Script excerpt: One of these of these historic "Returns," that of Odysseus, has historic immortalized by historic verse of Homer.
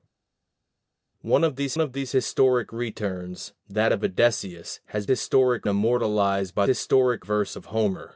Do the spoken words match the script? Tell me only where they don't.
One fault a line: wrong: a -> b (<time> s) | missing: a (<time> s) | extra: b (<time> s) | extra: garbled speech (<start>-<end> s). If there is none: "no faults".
no faults